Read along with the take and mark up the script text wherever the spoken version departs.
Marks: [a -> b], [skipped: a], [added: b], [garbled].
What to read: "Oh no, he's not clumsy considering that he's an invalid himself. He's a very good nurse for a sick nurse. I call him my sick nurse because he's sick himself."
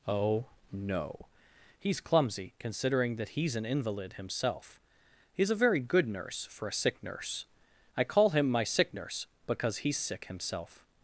"Oh no, he's [skipped: not] clumsy considering that he's an invalid himself. He's a very good nurse for a sick nurse. I call him my sick nurse because he's sick himself."